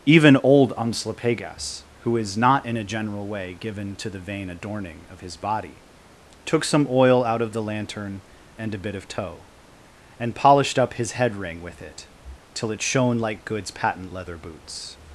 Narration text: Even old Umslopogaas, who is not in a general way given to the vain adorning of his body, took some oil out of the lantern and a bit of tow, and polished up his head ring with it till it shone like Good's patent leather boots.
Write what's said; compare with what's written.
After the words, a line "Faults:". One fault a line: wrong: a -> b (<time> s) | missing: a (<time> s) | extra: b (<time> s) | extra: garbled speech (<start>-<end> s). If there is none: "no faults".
Even old Umslopogaas, who is not in a general way given to the vain adorning of his body, took some oil out of the lantern and a bit of tow, and polished up his head ring with it till it shone like Good's patent leather boots.
Faults:
no faults